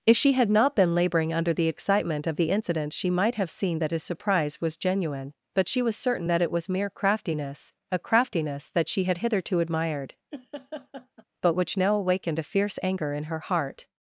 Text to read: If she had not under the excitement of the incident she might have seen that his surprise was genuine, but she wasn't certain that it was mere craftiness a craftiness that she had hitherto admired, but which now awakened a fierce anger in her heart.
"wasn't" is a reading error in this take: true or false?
true